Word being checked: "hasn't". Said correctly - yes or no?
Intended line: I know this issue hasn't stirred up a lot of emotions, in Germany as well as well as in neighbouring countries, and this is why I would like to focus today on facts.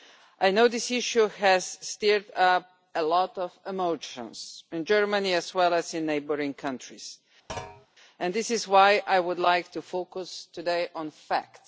no